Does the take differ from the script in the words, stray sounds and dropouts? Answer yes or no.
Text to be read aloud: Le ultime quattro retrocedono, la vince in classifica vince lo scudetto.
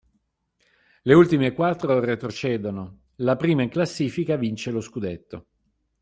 yes